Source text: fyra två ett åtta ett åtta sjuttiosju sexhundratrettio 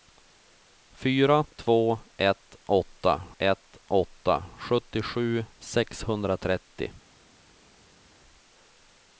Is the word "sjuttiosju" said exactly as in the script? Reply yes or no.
yes